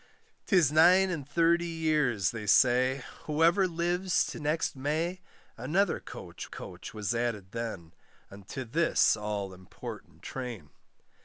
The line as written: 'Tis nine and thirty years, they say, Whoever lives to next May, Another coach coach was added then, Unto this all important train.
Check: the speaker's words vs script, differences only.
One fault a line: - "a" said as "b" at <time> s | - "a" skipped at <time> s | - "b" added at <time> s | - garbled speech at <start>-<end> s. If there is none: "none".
none